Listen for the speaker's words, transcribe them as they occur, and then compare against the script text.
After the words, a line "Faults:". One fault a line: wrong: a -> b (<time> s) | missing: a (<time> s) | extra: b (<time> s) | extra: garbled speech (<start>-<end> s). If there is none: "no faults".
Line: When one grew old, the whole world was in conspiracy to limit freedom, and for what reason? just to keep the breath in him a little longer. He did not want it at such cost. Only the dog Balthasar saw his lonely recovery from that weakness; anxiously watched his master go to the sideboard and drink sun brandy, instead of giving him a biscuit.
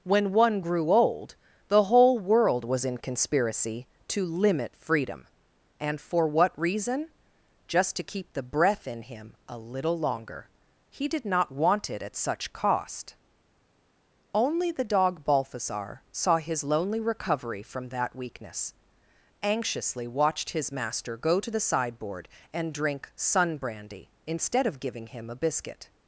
When one grew old, the whole world was in conspiracy to limit freedom, and for what reason? just to keep the breath in him a little longer. He did not want it at such cost. Only the dog Balthasar saw his lonely recovery from that weakness; anxiously watched his master go to the sideboard and drink sun brandy, instead of giving him a biscuit.
Faults:
no faults